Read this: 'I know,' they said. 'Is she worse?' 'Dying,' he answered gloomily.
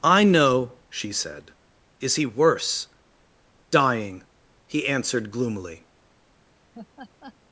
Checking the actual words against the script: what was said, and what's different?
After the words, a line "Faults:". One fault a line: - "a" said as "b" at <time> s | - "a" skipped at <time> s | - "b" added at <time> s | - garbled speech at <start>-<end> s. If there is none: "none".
'I know,' she said. 'Is he worse?' 'Dying,' he answered gloomily.
Faults:
- "they" said as "she" at 0.9 s
- "she" said as "he" at 2.1 s